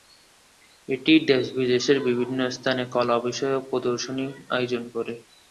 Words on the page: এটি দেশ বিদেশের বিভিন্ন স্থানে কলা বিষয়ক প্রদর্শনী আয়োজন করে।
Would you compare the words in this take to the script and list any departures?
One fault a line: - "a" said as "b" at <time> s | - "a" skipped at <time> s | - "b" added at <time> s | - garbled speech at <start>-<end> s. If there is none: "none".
none